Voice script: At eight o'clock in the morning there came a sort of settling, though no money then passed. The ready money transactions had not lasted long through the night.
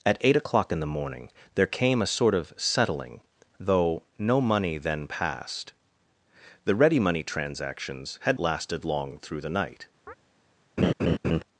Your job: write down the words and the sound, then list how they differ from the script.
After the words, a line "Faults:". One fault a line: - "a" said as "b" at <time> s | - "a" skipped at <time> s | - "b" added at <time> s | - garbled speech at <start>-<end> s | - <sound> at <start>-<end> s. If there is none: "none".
At eight o'clock in the morning there came a sort of settling, though no money then passed. The ready money transactions had lasted long through the night.
Faults:
- "not" skipped at 8.4 s
- chirp at 10.1-10.1 s
- laugh at 10.8-11.4 s